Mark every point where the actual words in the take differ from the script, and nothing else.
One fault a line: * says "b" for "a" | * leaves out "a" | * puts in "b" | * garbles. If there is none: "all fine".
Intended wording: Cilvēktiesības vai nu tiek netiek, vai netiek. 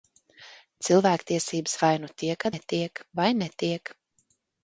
all fine